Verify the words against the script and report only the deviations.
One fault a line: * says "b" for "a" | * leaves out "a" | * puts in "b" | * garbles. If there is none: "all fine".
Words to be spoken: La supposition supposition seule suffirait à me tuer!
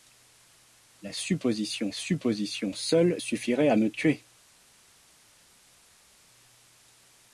all fine